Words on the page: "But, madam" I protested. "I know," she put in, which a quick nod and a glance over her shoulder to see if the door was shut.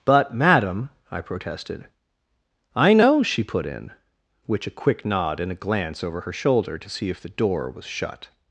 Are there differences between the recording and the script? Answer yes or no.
no